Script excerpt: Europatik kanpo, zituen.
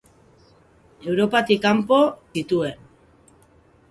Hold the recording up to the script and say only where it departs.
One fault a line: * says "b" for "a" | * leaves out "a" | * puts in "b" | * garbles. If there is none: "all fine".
all fine